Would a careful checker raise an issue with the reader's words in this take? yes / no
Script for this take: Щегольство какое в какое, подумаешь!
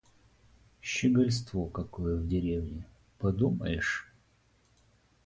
yes